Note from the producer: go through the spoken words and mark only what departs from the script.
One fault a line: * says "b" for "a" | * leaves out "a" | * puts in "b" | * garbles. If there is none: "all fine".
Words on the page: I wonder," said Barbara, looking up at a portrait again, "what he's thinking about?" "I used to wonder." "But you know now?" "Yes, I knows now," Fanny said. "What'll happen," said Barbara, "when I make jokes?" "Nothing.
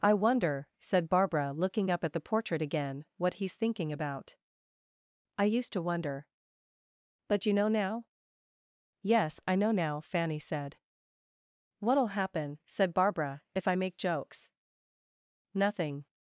* says "the" for "a"
* says "know" for "knows"
* says "if" for "when"